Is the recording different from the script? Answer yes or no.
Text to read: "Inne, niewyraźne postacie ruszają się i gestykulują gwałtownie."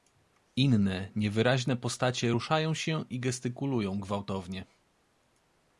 no